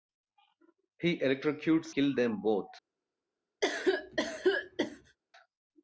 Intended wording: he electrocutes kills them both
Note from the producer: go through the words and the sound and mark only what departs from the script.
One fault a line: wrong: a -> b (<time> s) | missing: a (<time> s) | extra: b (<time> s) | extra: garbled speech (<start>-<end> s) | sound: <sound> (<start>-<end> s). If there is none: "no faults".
sound: cough (3.6-5.2 s)